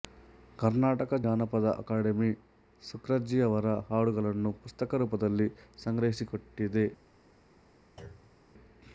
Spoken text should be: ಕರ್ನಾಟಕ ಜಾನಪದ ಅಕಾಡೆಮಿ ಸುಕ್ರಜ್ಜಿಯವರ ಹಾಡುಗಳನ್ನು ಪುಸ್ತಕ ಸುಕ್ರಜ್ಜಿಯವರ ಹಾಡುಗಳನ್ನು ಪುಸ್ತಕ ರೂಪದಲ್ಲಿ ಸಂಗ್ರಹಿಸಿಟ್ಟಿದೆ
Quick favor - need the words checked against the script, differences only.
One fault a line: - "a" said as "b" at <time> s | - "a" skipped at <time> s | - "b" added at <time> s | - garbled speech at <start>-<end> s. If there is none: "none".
- "ಸುಕ್ರಜ್ಜಿಯವರ ಹಾಡುಗಳನ್ನು ಪುಸ್ತಕ" skipped at 5.0 s